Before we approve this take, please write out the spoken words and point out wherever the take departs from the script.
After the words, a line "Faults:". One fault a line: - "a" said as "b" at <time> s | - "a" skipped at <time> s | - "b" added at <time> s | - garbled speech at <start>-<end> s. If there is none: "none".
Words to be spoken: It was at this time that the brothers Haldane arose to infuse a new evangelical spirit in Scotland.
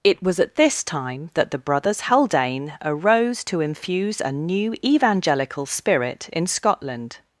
It was at this time that the brothers Haldane arose to infuse a new evangelical spirit in Scotland.
Faults:
none